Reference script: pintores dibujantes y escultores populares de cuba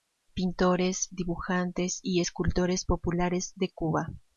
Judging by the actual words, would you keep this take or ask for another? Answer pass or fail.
pass